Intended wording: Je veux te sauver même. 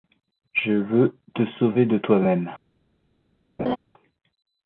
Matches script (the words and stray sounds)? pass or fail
fail